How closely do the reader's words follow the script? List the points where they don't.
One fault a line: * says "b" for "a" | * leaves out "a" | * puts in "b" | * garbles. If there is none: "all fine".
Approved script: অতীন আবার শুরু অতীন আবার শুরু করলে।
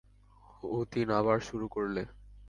* leaves out "অতীন আবার শুরু"